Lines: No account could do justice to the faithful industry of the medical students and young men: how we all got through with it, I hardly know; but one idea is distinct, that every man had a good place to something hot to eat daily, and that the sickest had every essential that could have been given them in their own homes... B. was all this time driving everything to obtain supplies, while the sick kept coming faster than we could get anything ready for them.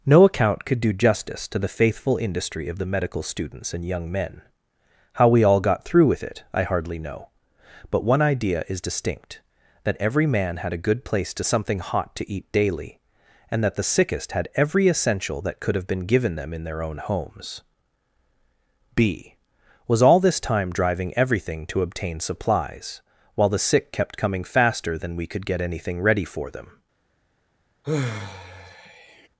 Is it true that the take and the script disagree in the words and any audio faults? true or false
true